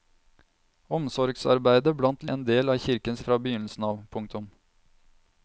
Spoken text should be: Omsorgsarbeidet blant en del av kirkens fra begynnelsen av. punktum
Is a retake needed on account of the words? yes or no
no